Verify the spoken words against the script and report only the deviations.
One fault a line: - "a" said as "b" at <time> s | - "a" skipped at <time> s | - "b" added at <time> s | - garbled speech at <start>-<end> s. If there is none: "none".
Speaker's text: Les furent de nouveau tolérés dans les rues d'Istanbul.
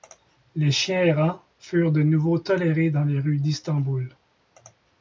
- "chiens errants" added at 0.7 s